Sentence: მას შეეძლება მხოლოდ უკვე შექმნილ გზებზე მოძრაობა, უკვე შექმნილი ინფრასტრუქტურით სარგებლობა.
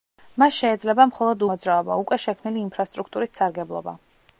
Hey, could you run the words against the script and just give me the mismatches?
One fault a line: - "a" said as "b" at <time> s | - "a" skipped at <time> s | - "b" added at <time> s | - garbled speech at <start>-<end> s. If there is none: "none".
- "უკვე შექმნილ გზებზე" skipped at 1.4 s